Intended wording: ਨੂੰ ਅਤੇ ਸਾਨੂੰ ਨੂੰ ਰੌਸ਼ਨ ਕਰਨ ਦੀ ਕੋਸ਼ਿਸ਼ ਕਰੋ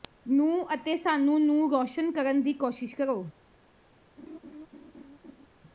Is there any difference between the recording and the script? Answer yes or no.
no